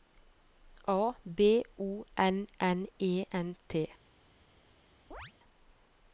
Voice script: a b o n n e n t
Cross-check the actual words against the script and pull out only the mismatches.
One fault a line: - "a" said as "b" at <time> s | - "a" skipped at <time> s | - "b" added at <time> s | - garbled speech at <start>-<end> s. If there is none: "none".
none